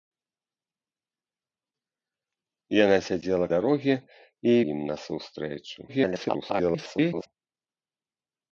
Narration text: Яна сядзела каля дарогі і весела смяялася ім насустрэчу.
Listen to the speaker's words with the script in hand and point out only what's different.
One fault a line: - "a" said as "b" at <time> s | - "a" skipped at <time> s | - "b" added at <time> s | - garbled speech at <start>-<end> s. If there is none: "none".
- "каля" skipped at 3.5 s
- "весела смяялася" skipped at 4.5 s
- garbled speech at 5.9-7.3 s